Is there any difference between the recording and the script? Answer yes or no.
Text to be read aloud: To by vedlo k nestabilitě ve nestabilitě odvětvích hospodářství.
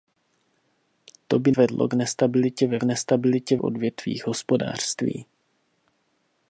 no